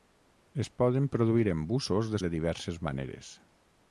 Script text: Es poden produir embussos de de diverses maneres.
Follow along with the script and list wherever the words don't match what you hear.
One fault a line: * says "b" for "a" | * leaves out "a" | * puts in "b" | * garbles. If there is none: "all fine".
all fine